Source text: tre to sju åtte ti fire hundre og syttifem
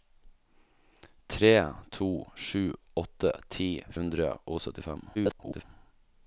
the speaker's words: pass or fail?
fail